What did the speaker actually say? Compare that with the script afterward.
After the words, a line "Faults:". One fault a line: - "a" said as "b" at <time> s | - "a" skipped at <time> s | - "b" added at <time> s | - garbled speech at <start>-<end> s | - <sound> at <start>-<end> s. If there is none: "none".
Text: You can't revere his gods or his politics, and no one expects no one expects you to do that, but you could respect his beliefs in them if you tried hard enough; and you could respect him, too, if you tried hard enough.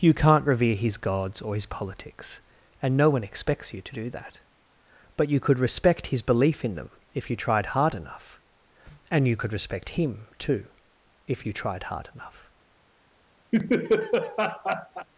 You can't revere his gods or his politics, and no one expects you to do that, but you could respect his belief in them if you tried hard enough; and you could respect him, too, if you tried hard enough.
Faults:
- "no one expects" skipped at 3.7 s
- "beliefs" said as "belief" at 6.2 s
- laugh at 13.5-15.1 s